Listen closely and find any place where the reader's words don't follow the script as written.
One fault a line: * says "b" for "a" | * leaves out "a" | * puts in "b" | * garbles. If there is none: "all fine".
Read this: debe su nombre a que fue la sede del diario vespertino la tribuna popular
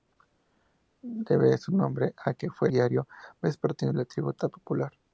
* leaves out "la sede del"